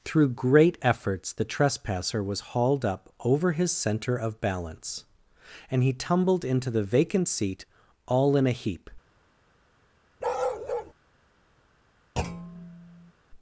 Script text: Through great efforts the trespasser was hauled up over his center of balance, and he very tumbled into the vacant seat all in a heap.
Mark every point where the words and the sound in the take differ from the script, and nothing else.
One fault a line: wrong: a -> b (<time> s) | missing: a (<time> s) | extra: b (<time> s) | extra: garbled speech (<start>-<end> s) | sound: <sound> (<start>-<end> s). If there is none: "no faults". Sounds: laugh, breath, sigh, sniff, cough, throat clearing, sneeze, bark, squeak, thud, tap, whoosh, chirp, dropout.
missing: very (5.9 s)
sound: bark (10.2-10.9 s)
sound: thud (12.2-13.1 s)